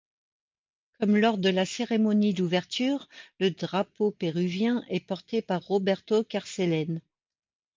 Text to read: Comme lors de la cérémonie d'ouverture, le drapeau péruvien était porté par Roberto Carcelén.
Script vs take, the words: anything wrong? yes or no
yes